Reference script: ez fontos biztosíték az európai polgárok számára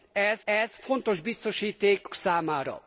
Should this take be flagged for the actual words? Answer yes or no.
yes